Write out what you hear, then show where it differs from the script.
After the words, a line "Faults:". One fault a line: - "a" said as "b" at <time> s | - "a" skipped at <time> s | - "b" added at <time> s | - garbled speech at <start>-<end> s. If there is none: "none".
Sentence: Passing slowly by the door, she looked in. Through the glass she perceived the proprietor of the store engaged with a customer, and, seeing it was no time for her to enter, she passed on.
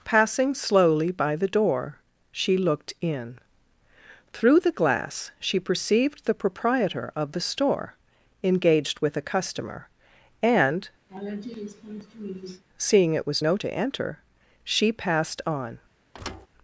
Passing slowly by the door, she looked in. Through the glass she perceived the proprietor of the store engaged with a customer, and, seeing it was no to enter, she passed on.
Faults:
- "time for her" skipped at 13.6 s